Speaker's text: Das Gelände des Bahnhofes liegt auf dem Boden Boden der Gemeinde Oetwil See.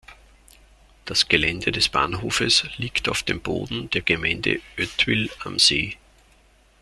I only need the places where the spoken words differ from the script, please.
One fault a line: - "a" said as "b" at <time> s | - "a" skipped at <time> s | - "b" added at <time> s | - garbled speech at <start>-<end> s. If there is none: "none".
- "Boden" skipped at 3.9 s
- "am" added at 5.4 s